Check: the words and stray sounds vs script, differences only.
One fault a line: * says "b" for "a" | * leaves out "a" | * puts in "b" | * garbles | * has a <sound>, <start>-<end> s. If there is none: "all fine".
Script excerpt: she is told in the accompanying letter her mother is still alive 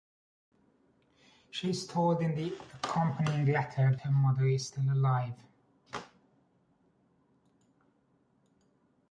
all fine